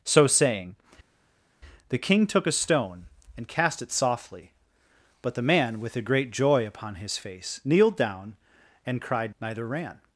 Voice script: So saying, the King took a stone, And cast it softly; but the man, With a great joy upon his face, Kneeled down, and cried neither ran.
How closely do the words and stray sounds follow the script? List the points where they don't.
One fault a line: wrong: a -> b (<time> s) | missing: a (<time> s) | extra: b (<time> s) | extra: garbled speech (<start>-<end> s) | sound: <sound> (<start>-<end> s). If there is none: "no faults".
no faults